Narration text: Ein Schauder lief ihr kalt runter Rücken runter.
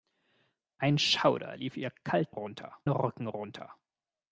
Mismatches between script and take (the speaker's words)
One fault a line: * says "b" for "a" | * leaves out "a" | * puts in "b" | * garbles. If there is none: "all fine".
all fine